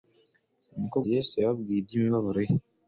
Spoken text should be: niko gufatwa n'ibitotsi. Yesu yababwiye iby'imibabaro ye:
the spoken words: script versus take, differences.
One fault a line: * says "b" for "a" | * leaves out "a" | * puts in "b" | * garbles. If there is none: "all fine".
* leaves out "gufatwa n'ibitotsi"